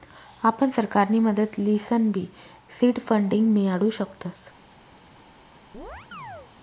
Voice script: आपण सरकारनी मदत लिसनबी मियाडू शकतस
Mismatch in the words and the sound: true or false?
true